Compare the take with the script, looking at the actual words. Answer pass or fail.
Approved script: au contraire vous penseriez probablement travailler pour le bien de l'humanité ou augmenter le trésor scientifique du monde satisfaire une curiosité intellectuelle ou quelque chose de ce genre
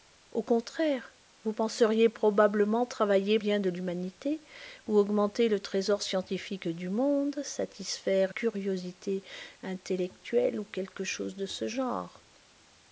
fail